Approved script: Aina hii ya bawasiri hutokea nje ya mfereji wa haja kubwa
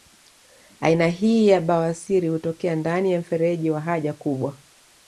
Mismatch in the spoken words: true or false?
true